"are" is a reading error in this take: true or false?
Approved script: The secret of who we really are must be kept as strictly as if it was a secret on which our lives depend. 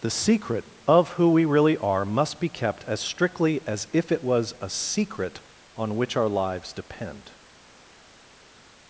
false